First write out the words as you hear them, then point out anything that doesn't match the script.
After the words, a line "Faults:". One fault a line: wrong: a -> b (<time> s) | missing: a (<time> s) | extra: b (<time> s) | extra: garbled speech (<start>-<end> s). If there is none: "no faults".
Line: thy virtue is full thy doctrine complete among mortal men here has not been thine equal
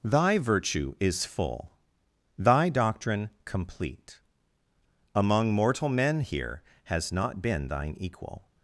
thy virtue is full thy doctrine complete among mortal men here has not been thine equal
Faults:
no faults